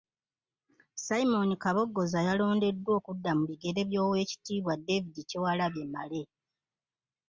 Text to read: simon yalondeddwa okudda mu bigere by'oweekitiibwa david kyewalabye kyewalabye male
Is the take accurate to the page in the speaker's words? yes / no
no